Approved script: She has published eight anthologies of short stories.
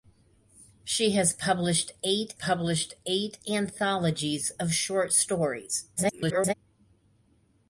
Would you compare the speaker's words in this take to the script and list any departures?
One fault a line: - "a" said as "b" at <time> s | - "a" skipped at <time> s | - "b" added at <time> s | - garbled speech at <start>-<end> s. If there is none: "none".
- "published eight" added at 2.3 s
- garbled speech at 6.0-6.5 s